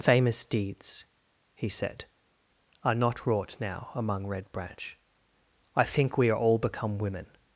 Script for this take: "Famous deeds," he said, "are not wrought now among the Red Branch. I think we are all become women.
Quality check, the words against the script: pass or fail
fail